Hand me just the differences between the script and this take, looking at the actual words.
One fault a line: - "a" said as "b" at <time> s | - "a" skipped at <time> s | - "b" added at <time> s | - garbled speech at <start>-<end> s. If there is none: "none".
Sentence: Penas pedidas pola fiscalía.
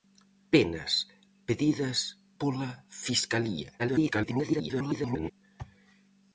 - garbled speech at 3.8-5.3 s